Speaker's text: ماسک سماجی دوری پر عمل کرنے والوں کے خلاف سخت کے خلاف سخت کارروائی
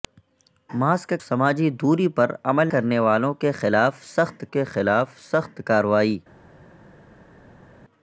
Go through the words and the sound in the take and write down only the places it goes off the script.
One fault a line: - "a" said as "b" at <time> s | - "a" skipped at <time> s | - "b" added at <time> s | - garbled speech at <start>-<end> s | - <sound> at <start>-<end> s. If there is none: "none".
none